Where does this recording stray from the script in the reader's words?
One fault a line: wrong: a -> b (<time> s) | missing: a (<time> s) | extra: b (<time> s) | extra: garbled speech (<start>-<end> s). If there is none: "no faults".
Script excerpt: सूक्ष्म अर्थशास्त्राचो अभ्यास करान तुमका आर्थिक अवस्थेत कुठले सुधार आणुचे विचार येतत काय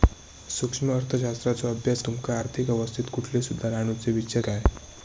missing: करान (2.0 s)
missing: येतत (4.4 s)